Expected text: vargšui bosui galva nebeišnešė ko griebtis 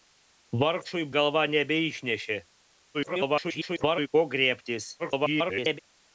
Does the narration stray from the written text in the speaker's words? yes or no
yes